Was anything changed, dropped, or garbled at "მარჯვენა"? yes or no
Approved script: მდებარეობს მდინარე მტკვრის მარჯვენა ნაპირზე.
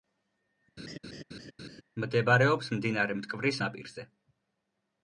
yes